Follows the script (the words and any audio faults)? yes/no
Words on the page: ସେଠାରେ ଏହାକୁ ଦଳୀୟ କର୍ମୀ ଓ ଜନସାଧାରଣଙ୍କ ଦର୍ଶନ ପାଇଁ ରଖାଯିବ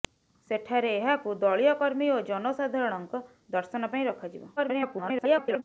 no